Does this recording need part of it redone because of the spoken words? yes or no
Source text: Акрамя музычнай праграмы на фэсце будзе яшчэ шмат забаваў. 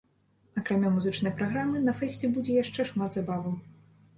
no